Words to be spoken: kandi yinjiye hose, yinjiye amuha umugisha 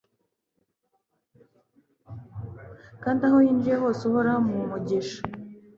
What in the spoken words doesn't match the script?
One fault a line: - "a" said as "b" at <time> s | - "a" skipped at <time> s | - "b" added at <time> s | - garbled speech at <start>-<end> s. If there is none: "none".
- "aho" added at 3.3 s
- "yinjiye" said as "uhoraho" at 4.1 s